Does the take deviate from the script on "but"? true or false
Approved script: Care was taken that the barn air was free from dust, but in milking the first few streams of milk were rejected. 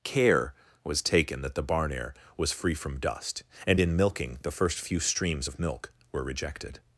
true